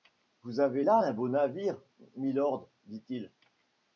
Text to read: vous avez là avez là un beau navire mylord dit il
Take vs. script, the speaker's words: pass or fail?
fail